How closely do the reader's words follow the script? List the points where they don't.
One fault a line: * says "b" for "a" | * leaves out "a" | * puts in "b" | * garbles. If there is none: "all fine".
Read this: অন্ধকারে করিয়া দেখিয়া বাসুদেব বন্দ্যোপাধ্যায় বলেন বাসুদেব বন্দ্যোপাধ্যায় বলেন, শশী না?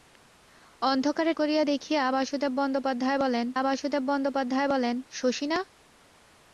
all fine